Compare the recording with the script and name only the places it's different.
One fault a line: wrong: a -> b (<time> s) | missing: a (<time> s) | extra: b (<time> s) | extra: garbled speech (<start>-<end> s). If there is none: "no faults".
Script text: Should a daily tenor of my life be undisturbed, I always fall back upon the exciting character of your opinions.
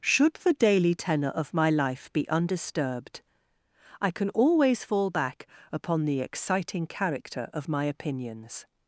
wrong: a -> the (0.3 s)
extra: can (4.1 s)
wrong: your -> my (7.7 s)